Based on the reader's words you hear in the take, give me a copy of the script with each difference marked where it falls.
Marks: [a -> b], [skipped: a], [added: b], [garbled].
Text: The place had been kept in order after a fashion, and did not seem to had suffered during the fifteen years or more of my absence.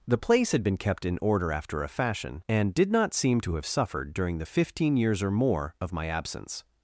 The place had been kept in order after a fashion, and did not seem to [had -> have] suffered during the fifteen years or more of my absence.